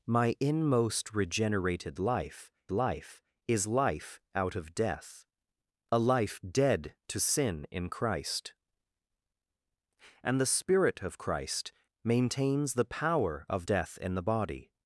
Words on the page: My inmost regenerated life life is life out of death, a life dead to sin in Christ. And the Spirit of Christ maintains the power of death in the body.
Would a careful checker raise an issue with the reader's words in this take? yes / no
no